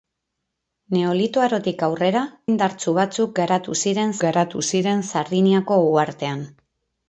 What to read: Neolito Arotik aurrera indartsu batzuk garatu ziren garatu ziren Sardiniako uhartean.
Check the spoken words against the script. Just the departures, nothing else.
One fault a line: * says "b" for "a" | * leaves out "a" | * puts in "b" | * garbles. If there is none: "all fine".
all fine